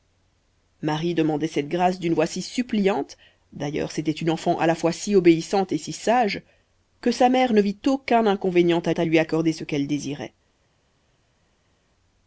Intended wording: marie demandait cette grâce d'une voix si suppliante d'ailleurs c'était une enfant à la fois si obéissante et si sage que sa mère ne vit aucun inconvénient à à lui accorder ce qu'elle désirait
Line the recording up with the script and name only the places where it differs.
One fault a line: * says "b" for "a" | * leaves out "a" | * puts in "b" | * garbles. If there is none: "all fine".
all fine